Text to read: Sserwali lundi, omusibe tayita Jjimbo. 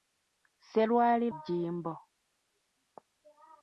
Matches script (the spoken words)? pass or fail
fail